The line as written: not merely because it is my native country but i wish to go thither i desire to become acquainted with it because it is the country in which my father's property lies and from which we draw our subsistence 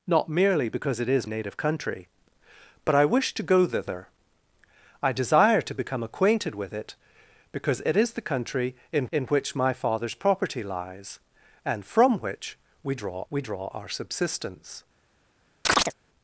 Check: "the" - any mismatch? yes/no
no